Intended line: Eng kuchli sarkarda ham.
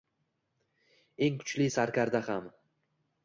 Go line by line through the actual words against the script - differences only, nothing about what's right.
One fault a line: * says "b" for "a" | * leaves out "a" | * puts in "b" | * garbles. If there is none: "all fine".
all fine